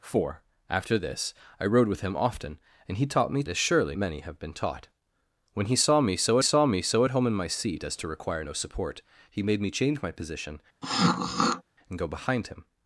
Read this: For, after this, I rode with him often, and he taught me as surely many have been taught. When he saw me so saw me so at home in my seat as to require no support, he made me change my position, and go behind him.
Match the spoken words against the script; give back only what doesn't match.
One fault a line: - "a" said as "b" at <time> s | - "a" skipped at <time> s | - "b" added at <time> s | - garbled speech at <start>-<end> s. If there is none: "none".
none